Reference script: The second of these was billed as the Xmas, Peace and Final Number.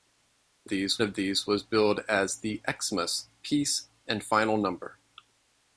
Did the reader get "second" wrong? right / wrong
wrong